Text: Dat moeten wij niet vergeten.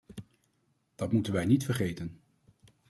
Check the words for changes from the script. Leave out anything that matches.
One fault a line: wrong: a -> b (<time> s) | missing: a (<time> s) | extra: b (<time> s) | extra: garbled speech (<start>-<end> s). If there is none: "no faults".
no faults